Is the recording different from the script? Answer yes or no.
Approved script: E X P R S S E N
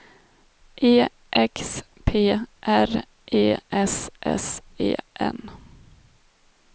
yes